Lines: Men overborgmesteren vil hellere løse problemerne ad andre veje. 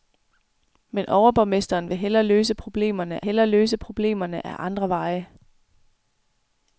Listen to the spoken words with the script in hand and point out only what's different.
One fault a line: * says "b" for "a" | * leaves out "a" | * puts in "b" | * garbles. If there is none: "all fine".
* puts in "hellere løse problemerne"